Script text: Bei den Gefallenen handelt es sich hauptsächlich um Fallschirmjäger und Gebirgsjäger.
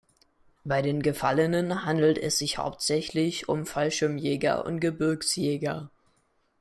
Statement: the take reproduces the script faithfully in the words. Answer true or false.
true